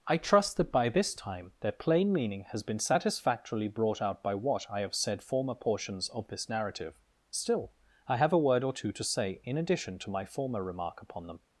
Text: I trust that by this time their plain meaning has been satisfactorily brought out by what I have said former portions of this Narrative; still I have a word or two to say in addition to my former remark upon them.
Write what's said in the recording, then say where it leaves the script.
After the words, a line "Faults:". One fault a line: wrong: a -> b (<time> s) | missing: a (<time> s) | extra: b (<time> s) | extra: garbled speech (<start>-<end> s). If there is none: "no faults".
I trust that by this time their plain meaning has been satisfactorily brought out by what I have said former portions of this Narrative; still I have a word or two to say in addition to my former remark upon them.
Faults:
no faults